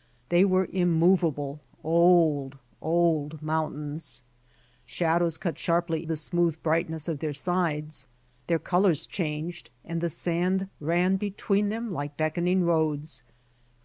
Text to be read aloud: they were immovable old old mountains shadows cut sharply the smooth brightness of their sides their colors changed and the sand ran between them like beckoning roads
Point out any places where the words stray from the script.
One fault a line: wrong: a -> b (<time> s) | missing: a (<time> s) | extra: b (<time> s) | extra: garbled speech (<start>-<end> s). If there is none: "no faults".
no faults